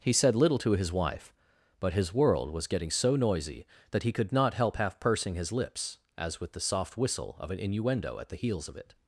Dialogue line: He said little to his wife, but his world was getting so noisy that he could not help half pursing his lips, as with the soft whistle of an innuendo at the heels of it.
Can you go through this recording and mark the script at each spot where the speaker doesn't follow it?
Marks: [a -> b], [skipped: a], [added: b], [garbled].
He said little to his wife, but his world was getting so noisy that he could not help half pursing his lips, as with the soft whistle of an innuendo at the heels of it.